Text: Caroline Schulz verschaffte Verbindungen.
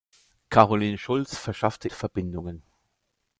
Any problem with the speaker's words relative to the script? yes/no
no